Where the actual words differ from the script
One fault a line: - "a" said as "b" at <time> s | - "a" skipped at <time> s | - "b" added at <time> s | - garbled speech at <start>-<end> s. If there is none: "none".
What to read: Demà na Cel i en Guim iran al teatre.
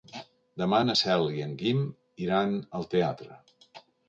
none